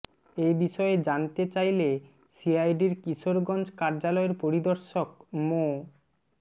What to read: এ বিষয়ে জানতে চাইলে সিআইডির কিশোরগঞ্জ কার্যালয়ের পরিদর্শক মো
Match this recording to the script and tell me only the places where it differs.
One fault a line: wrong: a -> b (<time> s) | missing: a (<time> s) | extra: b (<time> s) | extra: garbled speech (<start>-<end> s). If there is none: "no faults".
no faults